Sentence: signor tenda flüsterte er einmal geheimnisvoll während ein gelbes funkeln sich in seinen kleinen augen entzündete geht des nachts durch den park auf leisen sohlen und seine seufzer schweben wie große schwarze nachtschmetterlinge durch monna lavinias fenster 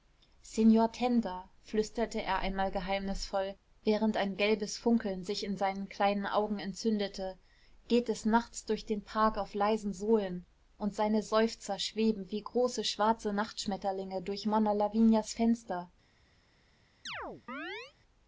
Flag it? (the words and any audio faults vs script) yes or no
yes